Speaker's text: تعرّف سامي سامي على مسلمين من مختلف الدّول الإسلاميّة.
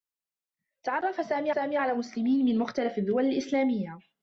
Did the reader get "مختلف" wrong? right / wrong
right